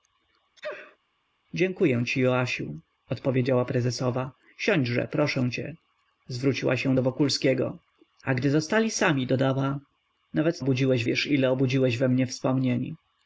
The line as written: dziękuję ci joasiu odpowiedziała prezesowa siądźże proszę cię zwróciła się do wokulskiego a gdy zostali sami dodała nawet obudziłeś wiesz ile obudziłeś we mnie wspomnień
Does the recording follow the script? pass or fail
pass